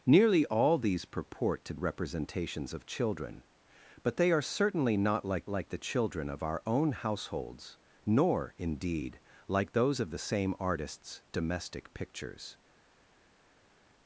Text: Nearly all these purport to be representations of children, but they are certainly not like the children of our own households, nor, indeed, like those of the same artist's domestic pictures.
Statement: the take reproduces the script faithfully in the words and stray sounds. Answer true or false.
false